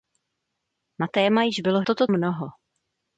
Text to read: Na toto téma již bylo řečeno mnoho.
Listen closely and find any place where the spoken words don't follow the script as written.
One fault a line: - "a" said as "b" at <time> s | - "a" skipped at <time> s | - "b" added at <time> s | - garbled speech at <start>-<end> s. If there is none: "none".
- "toto" skipped at 1.1 s
- "řečeno" said as "toto" at 1.8 s